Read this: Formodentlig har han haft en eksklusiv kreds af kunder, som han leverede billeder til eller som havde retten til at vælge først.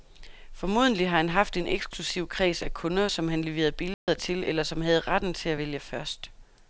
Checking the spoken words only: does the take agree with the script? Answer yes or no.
yes